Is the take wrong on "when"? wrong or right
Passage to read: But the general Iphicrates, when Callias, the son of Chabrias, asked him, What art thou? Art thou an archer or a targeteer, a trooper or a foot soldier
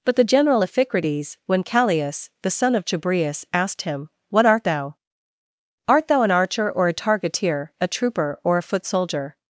right